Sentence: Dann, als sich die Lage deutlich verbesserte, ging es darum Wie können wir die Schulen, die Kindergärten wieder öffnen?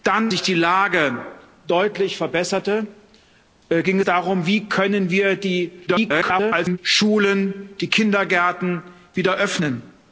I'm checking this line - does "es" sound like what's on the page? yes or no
no